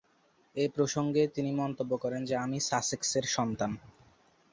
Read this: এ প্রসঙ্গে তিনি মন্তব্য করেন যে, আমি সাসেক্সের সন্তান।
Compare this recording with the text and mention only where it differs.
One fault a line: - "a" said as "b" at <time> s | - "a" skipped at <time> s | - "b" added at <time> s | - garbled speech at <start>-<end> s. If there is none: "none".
none